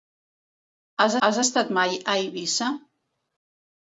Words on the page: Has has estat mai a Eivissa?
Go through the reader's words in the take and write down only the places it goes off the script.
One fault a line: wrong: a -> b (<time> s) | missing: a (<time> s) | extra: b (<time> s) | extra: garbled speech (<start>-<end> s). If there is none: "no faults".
no faults